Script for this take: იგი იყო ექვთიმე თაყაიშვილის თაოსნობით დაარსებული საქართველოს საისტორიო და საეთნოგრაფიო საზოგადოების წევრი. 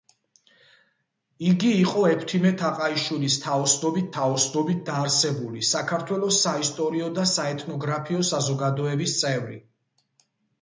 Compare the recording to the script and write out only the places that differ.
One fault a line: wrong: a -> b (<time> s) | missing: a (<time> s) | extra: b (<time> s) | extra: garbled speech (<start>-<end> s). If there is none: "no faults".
extra: თაოსნობით (4.1 s)